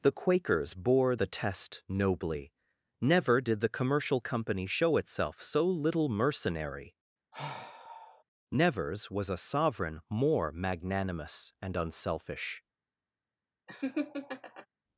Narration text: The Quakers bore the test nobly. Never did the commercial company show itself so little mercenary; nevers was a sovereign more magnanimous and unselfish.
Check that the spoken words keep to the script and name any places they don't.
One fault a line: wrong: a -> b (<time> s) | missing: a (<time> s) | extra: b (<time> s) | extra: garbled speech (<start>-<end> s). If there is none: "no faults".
no faults